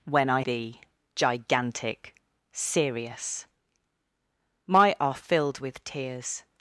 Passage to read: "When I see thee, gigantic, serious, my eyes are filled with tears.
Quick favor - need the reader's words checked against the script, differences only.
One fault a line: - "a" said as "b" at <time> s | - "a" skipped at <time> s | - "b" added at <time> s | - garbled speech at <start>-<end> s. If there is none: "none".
- "see" skipped at 0.4 s
- "eyes" skipped at 5.0 s